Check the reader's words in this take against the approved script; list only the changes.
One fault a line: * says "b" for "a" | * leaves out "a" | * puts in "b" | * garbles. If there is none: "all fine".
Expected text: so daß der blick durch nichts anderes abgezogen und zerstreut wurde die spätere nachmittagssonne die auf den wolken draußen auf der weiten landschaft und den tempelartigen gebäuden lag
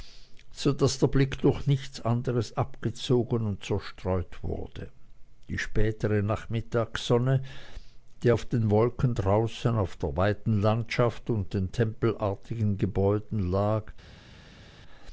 all fine